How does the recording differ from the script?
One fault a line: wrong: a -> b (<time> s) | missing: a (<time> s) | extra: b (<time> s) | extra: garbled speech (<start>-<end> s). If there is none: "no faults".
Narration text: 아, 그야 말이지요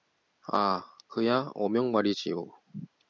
extra: 어명 (1.5 s)